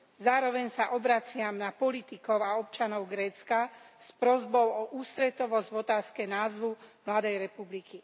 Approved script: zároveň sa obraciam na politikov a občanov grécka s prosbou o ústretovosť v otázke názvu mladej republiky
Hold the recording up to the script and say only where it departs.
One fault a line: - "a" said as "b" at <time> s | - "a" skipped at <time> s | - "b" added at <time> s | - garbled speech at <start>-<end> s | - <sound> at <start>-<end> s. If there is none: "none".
none